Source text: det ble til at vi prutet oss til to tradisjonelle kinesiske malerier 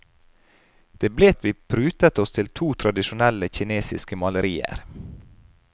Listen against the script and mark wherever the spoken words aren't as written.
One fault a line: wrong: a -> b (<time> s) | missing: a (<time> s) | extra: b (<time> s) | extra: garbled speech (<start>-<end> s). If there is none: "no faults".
missing: til (1.3 s)